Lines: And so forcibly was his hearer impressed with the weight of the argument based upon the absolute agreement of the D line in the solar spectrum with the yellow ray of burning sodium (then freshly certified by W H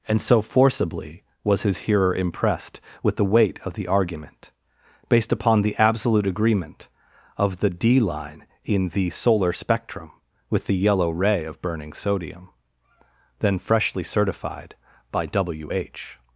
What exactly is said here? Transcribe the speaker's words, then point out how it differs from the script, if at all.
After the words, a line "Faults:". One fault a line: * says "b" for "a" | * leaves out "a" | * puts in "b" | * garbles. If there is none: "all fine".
And so forcibly was his hearer impressed with the weight of the argument based upon the absolute agreement of the D line in the solar spectrum with the yellow ray of burning sodium (then freshly certified by W H
Faults:
all fine